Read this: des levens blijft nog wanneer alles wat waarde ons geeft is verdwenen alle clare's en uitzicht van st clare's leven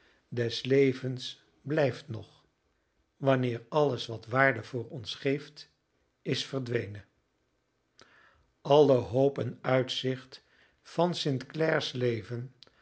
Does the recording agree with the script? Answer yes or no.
no